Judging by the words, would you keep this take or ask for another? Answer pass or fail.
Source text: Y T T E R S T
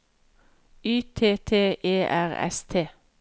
pass